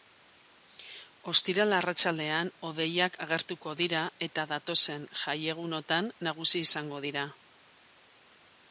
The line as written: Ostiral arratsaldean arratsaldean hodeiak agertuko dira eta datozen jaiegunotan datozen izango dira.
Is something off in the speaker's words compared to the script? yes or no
yes